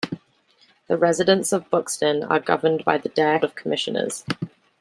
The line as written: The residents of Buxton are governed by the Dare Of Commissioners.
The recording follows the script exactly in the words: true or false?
true